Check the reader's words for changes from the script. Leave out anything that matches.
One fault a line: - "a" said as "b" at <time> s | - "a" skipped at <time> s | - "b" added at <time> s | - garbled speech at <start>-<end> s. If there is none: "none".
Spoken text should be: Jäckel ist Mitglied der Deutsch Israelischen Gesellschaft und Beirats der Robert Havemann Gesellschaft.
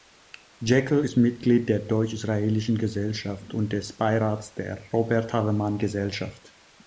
- "des" added at 3.7 s